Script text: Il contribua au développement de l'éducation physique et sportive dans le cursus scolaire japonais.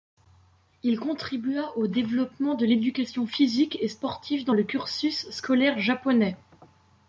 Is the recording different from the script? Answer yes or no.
no